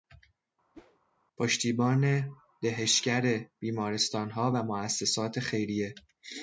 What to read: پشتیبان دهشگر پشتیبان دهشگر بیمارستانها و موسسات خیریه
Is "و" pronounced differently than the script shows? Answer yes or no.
no